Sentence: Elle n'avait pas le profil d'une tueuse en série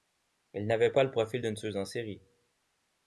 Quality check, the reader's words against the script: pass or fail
pass